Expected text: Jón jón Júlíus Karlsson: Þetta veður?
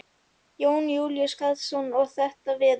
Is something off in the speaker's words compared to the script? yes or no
yes